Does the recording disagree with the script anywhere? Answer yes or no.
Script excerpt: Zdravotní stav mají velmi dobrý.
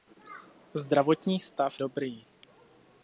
yes